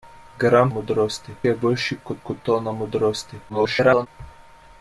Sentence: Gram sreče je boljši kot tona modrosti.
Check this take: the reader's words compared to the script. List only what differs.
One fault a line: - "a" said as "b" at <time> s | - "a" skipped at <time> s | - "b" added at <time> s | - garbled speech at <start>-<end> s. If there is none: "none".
- "sreče" said as "modrosti" at 0.7 s
- "kot" added at 2.3 s
- garbled speech at 3.5-4.1 s